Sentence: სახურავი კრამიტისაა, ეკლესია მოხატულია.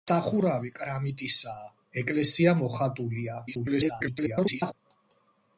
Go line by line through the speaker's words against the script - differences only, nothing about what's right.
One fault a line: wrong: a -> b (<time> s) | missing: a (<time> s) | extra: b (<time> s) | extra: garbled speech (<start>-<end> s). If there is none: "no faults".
extra: garbled speech (3.5-4.7 s)